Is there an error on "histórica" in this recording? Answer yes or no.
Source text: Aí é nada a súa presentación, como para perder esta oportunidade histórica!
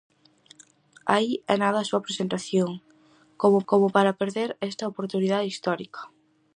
no